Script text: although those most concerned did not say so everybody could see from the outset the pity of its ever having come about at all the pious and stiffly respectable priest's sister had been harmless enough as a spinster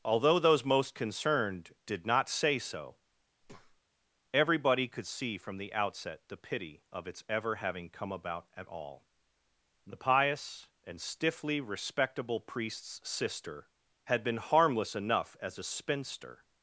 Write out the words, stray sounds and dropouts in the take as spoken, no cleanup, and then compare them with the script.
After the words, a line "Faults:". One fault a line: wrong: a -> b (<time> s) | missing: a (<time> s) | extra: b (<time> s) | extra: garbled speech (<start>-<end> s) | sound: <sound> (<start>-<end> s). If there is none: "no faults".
although those most concerned did not say so everybody could see from the outset the pity of its ever having come about at all the pious and stiffly respectable priest's sister had been harmless enough as a spinster
Faults:
sound: breath (3.4-3.8 s)